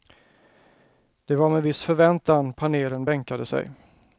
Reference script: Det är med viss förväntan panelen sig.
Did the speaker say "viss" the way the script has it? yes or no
yes